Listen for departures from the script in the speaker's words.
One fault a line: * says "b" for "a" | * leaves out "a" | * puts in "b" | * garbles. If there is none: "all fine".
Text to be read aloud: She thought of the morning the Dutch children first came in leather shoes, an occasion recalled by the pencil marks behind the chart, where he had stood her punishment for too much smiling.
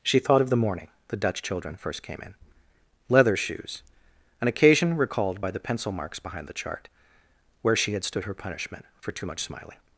* says "she" for "he"